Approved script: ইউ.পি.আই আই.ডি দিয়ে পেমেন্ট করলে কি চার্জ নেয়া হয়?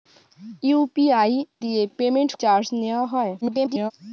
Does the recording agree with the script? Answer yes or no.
no